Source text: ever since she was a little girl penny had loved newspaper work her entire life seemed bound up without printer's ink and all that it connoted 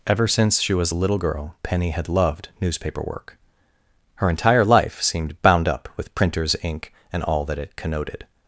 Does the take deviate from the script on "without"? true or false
true